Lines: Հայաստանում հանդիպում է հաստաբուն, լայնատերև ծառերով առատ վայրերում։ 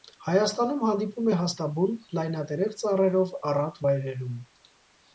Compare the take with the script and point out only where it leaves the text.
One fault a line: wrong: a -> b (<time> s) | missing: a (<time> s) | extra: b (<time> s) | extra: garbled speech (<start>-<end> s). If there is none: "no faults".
no faults